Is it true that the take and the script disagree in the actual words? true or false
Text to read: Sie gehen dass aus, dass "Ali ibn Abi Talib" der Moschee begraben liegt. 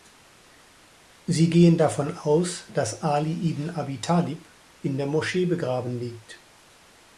true